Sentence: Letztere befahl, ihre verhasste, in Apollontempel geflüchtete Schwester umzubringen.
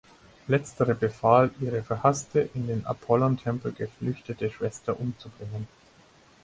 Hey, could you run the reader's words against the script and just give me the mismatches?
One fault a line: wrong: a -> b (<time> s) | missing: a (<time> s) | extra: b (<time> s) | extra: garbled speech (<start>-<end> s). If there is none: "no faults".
extra: den (2.6 s)